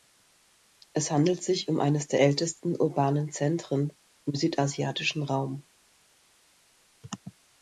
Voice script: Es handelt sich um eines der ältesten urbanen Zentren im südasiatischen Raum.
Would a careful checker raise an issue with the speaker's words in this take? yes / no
no